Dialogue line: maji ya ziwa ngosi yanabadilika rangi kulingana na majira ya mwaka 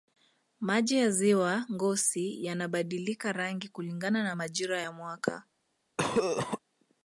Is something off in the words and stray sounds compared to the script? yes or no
yes